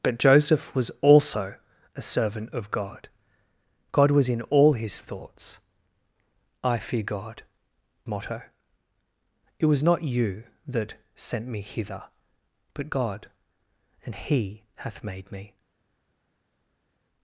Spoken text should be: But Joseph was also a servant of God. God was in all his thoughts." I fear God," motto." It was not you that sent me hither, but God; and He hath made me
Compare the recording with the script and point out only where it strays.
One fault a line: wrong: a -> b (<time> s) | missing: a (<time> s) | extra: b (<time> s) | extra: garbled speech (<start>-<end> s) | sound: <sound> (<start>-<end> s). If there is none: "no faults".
no faults